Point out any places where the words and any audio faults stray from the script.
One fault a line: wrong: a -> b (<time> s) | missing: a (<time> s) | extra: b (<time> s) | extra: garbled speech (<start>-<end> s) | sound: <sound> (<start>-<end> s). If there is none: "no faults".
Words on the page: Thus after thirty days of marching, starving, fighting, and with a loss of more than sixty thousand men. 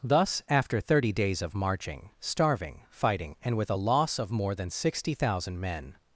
no faults